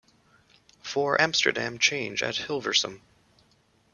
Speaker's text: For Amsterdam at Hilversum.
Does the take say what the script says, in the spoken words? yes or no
no